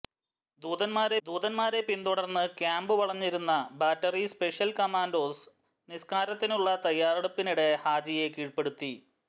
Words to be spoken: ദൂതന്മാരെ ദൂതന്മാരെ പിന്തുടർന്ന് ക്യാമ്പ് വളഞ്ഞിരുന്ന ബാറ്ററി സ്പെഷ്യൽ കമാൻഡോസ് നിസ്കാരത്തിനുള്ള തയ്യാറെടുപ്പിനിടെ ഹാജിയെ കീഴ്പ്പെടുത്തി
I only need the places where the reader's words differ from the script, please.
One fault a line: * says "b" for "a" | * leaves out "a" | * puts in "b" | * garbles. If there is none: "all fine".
all fine